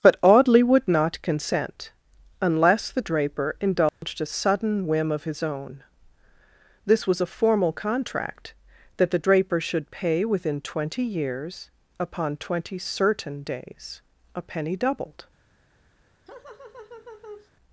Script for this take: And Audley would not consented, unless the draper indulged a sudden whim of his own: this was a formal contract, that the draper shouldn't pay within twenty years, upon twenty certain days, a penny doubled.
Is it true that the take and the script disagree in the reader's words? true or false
true